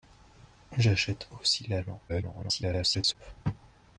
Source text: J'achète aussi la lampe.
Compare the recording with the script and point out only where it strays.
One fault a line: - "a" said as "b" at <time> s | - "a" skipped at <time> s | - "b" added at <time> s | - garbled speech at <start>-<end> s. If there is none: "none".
- garbled speech at 2.1-3.1 s